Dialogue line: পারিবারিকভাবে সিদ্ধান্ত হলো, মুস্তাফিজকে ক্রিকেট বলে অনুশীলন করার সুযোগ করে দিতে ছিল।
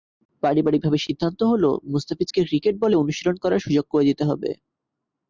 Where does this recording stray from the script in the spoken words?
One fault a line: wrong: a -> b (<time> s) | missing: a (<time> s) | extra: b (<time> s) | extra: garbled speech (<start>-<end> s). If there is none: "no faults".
wrong: ছিল -> হবে (4.2 s)